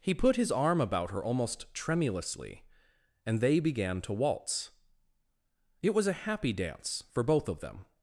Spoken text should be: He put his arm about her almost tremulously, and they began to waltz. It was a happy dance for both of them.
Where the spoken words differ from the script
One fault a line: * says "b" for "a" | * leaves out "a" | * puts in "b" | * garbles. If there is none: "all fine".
all fine